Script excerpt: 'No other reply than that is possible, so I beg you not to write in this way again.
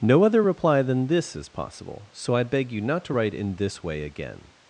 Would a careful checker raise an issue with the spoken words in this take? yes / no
yes